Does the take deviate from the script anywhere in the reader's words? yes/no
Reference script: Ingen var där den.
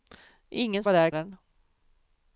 no